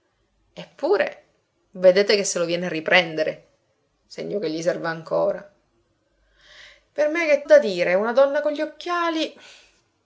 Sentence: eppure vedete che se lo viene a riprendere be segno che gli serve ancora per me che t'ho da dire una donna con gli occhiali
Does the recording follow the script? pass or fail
fail